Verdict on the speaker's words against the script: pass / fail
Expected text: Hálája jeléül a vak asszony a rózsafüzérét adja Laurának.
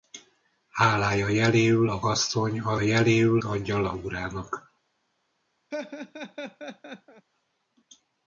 fail